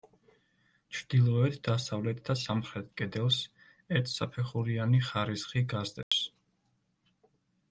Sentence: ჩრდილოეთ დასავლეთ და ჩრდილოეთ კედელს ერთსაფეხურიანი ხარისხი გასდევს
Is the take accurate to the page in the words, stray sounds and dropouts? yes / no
no